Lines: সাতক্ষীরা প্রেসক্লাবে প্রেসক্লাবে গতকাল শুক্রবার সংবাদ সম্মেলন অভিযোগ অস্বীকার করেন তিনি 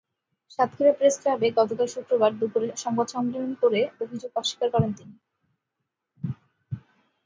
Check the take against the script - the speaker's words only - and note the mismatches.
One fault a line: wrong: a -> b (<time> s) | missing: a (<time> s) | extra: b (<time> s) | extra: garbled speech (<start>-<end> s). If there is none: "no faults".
missing: প্রেসক্লাবে (1.5 s)
extra: দুপুরে (2.4 s)
extra: করে (3.6 s)